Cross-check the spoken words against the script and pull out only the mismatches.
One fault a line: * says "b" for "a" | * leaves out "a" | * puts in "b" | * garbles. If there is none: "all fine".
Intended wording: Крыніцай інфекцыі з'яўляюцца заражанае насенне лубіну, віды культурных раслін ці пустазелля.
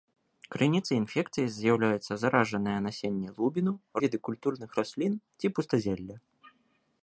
all fine